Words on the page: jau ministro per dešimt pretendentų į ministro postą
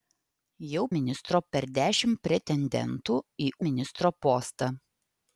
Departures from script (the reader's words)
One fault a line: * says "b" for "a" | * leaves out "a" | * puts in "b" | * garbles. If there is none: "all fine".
all fine